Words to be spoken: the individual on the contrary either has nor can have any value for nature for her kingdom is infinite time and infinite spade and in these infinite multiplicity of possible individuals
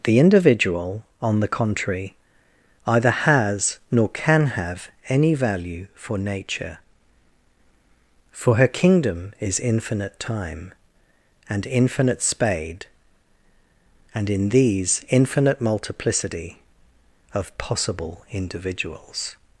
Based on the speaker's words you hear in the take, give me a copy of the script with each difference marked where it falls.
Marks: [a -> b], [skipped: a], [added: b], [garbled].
the individual on the contrary either has nor can have any value for nature for her kingdom is infinite time and infinite spade and in these infinite multiplicity of possible individuals